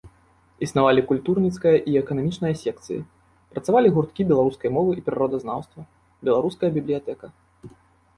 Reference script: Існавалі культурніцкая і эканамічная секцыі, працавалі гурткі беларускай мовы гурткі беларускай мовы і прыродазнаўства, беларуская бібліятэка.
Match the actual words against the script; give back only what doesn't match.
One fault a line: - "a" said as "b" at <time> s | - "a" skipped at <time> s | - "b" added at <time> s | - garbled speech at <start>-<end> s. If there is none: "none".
- "гурткі беларускай мовы" skipped at 4.9 s